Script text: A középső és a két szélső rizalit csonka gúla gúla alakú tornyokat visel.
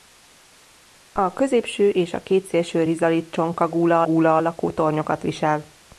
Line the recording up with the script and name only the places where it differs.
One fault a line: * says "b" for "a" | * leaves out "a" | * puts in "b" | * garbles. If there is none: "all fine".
all fine